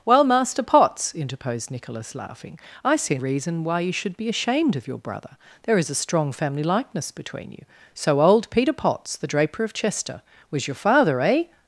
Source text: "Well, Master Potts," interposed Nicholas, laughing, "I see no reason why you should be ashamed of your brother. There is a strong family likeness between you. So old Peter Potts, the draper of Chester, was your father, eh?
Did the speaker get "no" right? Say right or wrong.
wrong